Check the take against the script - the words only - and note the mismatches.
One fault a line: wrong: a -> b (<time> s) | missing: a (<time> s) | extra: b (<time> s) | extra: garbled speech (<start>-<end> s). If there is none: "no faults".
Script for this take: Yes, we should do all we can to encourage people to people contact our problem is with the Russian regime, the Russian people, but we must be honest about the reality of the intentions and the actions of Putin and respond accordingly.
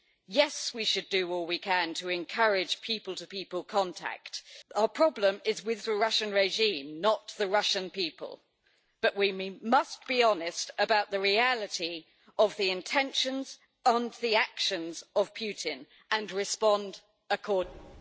extra: not (7.0 s)